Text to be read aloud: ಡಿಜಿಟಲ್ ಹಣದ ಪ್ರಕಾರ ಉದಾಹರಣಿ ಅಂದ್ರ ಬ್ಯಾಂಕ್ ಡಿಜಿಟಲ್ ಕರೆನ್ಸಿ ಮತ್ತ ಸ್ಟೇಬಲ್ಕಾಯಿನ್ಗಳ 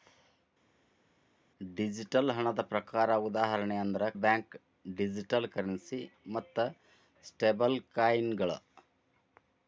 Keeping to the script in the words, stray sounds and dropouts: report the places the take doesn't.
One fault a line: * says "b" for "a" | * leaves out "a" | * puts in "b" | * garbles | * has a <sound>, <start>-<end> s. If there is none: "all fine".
all fine